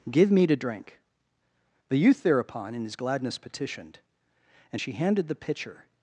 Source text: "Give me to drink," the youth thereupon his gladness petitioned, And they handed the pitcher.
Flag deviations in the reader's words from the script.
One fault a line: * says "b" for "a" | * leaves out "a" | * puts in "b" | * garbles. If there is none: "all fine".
* puts in "in"
* says "she" for "they"